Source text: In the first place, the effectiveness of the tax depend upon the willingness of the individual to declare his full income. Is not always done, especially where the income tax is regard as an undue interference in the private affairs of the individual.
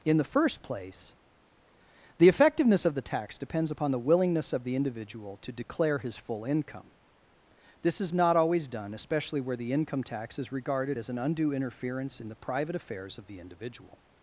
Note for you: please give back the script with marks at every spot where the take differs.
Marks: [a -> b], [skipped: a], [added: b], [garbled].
In the first place, the effectiveness of the tax [depend -> depends] upon the willingness of the individual to declare his full income. [added: This] Is not always done, especially where the income tax is [regard -> regarded] as an undue interference in the private affairs of the individual.